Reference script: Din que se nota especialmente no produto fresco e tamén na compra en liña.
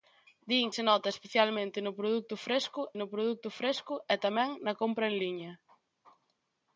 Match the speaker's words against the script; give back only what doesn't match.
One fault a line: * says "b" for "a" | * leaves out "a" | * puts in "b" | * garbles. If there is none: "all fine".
* leaves out "que"
* puts in "no produto fresco"